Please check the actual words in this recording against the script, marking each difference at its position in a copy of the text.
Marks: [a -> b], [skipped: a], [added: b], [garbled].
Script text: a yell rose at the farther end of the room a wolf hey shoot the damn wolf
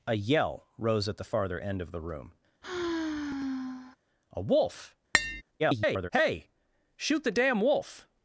a yell rose at the farther end of the room a wolf [garbled] hey shoot the damn wolf